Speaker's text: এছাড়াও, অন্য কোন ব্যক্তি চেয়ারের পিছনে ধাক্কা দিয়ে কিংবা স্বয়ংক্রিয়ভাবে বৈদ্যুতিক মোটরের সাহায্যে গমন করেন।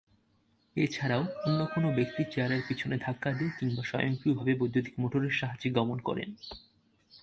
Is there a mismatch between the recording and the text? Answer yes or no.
no